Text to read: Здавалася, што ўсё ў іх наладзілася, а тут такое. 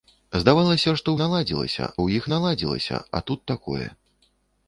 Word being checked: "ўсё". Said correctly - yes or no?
no